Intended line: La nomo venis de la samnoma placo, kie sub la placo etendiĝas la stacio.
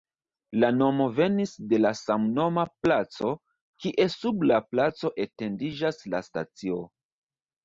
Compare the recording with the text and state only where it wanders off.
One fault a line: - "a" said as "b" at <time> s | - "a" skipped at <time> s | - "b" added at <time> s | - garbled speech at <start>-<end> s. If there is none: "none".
none